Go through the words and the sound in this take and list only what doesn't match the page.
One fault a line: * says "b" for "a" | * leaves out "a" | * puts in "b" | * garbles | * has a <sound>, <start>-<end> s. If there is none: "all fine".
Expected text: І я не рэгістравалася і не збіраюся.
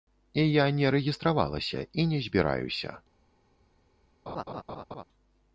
* has a laugh, 4.3-5.0 s